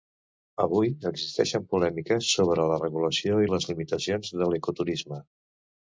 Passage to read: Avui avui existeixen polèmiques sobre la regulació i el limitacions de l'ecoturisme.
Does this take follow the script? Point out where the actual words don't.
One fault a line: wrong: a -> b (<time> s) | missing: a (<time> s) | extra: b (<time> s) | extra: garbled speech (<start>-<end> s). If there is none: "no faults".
missing: avui (0.9 s)
wrong: el -> les (3.5 s)